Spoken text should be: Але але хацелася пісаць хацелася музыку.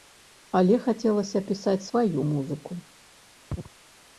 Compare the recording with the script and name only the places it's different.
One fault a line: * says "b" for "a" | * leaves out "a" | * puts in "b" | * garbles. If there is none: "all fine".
* leaves out "але"
* says "сваю" for "хацелася"